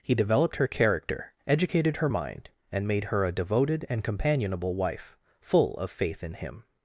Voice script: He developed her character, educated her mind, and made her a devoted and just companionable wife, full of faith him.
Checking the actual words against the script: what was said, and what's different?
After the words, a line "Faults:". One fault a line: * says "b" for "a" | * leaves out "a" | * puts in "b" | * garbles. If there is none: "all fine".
He developed her character, educated her mind, and made her a devoted and companionable wife, full of faith in him.
Faults:
* leaves out "just"
* puts in "in"